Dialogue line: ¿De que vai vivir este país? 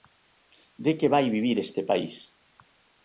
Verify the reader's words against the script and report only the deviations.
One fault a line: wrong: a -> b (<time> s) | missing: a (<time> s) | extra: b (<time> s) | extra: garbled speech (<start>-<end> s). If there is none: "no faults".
no faults